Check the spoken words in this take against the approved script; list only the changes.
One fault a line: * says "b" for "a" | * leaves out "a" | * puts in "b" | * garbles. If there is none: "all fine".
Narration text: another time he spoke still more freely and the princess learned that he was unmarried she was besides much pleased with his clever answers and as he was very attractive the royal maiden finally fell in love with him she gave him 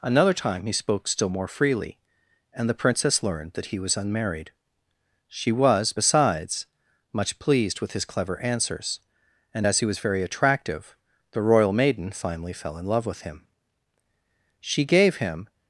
all fine